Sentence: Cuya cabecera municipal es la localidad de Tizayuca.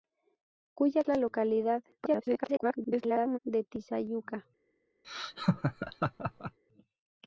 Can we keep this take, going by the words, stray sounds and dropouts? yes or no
no